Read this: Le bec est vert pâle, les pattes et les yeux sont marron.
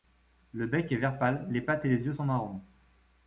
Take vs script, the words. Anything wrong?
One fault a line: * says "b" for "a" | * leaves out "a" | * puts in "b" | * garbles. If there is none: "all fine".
all fine